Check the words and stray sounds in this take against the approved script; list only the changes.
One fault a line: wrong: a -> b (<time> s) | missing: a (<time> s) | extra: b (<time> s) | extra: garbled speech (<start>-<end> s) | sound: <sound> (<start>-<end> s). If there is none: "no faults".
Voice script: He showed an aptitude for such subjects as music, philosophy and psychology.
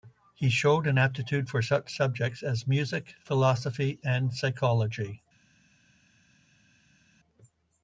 no faults